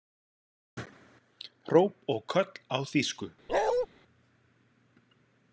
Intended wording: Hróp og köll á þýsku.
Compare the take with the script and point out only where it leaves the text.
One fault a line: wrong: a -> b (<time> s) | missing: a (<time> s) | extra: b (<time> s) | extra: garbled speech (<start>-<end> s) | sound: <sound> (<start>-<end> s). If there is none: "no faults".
sound: bark (3.5-3.9 s)